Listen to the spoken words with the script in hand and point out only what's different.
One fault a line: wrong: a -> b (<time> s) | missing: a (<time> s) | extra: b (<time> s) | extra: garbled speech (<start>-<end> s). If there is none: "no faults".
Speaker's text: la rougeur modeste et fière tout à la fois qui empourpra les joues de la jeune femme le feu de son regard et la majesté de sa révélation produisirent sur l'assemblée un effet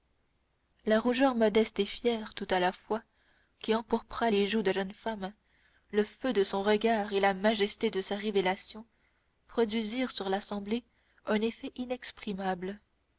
missing: la (4.7 s)